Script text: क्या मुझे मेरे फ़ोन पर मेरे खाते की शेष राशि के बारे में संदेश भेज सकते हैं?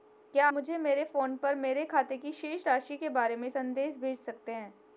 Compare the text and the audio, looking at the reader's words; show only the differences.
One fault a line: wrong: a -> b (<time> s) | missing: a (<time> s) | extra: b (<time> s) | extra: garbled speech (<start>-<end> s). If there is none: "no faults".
no faults